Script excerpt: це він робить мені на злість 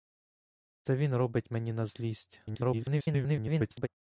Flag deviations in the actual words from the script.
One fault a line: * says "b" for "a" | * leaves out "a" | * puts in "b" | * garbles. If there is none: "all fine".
* garbles